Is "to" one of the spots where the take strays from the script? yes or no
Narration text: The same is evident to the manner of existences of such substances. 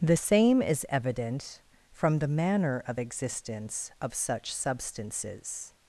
yes